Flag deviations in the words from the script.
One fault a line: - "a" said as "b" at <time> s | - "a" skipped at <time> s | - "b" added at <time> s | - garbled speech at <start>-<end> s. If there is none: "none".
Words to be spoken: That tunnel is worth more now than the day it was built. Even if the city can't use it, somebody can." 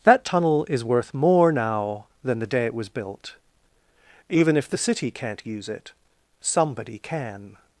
none